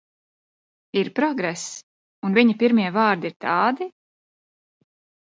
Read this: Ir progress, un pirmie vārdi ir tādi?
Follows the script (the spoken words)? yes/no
no